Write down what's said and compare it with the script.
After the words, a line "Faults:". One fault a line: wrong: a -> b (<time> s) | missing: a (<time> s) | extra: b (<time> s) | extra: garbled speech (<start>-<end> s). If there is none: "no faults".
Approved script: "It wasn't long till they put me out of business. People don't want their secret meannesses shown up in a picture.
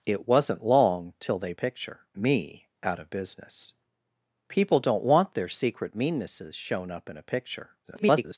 "It wasn't long till they picture me out of business. People don't want their secret meannesses shown up in a picture. [garbled]
Faults:
wrong: put -> picture (1.5 s)
extra: garbled speech (7.8-8.4 s)